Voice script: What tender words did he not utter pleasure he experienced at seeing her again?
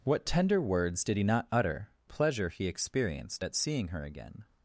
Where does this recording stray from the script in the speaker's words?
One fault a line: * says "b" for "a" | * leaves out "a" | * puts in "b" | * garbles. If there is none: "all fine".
all fine